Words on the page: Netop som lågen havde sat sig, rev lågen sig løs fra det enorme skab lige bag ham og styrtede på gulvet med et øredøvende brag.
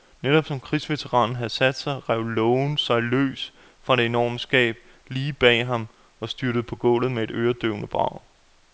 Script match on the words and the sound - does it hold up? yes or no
no